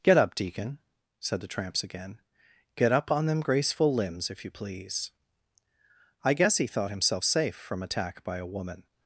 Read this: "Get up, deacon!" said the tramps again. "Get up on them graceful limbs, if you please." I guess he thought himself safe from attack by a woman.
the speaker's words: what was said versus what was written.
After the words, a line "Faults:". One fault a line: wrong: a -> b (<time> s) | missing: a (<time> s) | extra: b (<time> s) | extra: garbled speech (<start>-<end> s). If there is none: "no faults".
"Get up, deacon!" said the tramps again. "Get up on them graceful limbs, if you please." I guess he thought himself safe from attack by a woman.
Faults:
no faults